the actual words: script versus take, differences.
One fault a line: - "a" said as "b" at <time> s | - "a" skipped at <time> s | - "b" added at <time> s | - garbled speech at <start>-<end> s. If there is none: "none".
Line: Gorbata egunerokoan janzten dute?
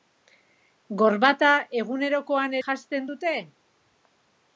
none